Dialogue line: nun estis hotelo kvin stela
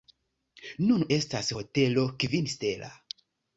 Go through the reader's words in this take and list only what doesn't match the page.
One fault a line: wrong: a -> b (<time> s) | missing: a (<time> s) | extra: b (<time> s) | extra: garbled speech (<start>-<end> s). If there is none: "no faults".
wrong: estis -> estas (1.2 s)